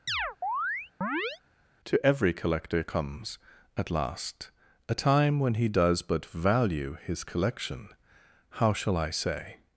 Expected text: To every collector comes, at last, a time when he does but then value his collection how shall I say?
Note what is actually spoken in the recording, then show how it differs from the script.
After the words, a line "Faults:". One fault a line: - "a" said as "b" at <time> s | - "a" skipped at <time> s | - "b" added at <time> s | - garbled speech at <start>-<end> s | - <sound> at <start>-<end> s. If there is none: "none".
To every collector comes, at last, a time when he does but value his collection how shall I say?
Faults:
- chirp at 0.1-1.4 s
- "then" skipped at 6.3 s